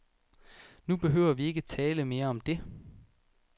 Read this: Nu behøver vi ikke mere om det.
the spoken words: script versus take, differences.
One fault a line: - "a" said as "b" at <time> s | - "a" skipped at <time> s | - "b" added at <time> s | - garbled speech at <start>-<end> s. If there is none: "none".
- "tale" added at 1.6 s